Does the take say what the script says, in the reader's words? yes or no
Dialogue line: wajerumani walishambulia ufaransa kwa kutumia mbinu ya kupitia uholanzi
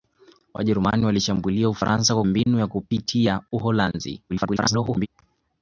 no